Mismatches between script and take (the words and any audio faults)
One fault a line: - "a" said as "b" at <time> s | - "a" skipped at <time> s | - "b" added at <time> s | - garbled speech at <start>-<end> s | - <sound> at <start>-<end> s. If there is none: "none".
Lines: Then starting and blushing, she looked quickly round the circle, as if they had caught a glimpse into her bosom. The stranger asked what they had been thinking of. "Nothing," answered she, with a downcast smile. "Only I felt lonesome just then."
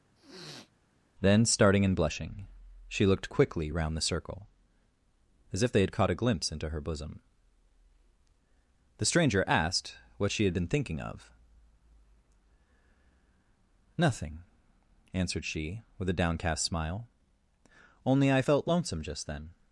- sniff at 0.2-0.7 s
- "they" said as "she" at 10.3 s